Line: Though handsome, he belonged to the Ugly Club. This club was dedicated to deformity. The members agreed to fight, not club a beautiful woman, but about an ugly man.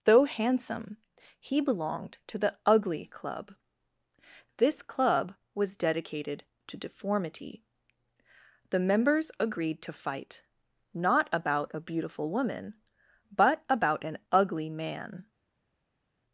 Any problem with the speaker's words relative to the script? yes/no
yes